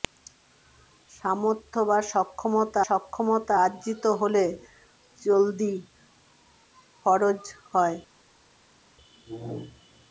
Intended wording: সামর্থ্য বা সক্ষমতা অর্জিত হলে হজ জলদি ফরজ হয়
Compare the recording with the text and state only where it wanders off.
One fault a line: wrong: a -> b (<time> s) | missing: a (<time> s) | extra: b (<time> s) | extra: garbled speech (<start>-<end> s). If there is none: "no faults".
extra: সক্ষমতা (2.9 s)
missing: হজ (4.4 s)